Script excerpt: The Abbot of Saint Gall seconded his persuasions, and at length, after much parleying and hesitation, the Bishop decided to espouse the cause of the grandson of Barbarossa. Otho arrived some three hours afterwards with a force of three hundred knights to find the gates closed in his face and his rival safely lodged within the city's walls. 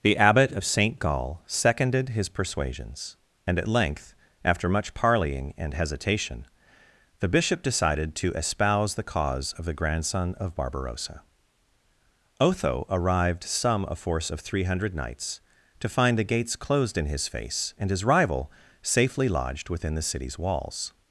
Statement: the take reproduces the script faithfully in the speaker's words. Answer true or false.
false